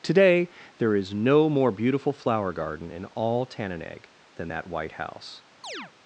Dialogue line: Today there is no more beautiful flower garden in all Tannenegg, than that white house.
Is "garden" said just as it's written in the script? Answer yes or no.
yes